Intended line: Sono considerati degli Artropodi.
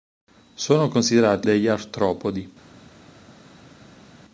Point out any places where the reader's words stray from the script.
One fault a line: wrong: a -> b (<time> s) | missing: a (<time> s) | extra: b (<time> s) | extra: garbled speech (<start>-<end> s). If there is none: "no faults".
no faults